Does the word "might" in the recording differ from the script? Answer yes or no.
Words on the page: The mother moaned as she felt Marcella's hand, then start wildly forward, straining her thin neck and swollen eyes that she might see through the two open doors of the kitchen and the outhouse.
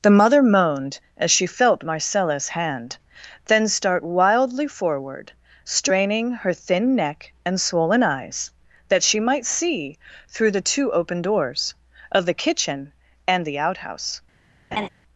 no